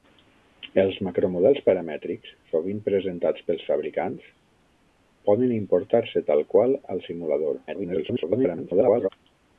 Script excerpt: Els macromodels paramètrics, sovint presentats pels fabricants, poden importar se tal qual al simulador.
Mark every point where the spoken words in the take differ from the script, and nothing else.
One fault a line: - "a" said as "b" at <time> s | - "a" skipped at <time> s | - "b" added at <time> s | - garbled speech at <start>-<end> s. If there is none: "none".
- garbled speech at 7.7-9.1 s